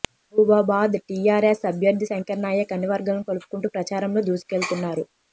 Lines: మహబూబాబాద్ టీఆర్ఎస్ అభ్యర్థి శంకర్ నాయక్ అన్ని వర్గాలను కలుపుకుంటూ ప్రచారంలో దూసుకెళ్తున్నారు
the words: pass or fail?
pass